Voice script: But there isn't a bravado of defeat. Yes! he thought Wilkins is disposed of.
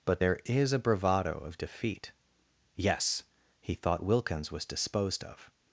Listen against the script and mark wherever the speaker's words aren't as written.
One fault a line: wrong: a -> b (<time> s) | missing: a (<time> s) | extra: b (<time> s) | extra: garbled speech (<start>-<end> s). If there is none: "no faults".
wrong: isn't -> is (0.4 s)
wrong: is -> was (4.5 s)